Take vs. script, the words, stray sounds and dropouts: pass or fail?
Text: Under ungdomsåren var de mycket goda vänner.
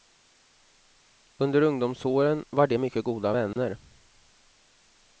fail